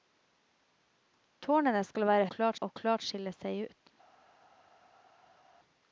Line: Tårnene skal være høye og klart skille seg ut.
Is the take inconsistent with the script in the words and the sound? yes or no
yes